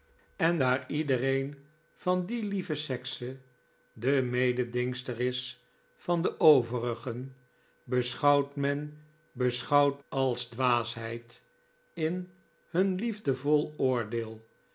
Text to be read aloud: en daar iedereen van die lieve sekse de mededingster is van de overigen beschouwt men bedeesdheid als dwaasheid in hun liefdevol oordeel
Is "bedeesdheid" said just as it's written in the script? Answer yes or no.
no